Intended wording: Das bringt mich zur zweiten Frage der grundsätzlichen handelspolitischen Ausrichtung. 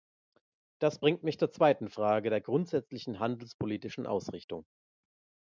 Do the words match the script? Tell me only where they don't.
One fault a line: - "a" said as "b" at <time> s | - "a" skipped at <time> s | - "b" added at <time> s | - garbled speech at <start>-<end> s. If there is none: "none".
none